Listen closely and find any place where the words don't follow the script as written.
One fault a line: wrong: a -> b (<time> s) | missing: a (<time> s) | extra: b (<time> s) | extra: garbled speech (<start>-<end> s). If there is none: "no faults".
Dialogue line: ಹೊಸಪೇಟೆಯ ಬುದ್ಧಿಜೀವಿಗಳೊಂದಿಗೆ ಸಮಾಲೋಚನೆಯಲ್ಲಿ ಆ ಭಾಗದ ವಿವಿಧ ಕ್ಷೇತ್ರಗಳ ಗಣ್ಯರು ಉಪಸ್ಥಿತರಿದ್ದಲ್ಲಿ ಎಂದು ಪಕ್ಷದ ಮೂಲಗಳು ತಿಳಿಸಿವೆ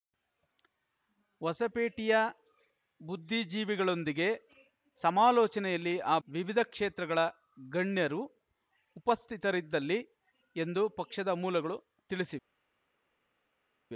missing: ಭಾಗದ (6.2 s)